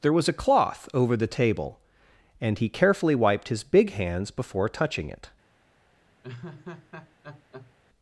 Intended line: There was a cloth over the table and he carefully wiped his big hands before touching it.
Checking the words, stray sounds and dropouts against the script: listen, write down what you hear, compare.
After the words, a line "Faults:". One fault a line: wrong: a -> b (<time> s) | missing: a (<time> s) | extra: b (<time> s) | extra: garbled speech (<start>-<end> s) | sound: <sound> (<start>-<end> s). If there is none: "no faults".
There was a cloth over the table and he carefully wiped his big hands before touching it.
Faults:
sound: laugh (6.2-7.7 s)